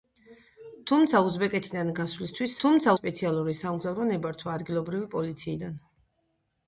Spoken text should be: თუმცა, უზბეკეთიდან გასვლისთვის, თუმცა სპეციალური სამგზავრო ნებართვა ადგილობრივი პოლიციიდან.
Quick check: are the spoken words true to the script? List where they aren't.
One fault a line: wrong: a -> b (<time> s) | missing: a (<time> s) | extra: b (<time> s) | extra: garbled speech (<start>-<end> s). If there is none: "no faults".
no faults